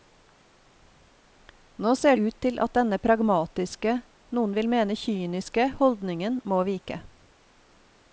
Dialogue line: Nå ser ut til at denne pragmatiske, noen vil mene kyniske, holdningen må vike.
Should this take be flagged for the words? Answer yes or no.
no